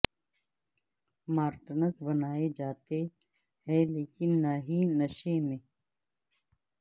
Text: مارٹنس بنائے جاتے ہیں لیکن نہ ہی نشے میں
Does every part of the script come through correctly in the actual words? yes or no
yes